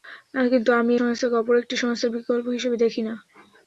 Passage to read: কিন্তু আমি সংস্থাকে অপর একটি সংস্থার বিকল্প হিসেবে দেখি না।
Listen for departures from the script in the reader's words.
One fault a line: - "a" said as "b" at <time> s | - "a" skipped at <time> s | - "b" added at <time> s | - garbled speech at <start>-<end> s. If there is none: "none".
none